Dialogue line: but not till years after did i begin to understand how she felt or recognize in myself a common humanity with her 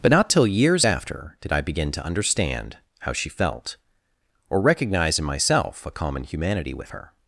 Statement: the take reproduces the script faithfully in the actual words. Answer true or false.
true